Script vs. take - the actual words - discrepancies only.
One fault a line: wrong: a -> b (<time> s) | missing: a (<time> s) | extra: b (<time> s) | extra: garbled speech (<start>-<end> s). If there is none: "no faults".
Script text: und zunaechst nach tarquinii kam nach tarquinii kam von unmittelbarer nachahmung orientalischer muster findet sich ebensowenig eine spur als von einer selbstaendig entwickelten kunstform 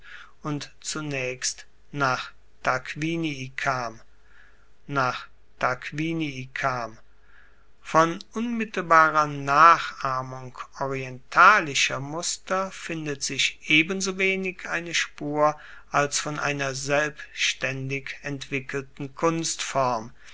no faults